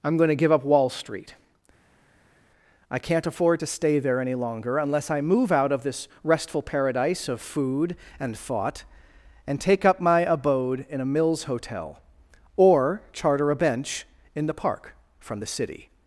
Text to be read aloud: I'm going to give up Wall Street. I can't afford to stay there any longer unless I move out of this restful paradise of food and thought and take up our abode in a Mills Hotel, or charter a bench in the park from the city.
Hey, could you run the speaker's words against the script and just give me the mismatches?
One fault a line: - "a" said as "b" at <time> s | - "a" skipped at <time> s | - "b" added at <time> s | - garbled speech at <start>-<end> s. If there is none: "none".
- "our" said as "my" at 10.0 s